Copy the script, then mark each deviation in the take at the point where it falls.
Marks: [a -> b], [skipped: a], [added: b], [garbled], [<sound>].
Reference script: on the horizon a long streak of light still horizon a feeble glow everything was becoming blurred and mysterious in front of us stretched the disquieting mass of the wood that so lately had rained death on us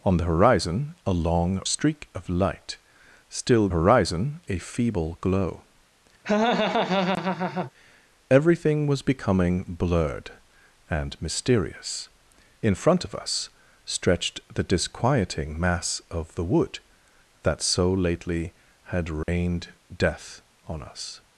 on the horizon a long streak of light still horizon a feeble glow [laugh] everything was becoming blurred and mysterious in front of us stretched the disquieting mass of the wood that so lately had rained [dropout] death on us